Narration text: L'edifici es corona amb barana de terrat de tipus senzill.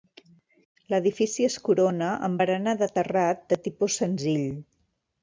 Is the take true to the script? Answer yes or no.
yes